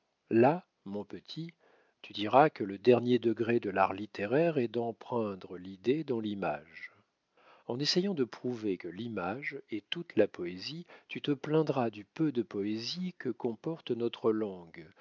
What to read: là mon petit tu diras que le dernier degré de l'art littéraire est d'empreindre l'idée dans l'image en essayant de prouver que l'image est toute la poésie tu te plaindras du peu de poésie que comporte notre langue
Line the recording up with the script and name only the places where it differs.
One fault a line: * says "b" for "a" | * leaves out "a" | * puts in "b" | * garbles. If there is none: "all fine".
all fine